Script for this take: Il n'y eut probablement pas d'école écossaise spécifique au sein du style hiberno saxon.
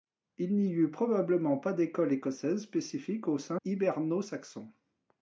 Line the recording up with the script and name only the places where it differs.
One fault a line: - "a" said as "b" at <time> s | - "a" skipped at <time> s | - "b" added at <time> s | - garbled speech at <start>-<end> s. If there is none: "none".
- "du style" skipped at 3.6 s